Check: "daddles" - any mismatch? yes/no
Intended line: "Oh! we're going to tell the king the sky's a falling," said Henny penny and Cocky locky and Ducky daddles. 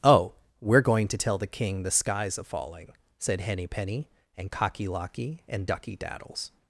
no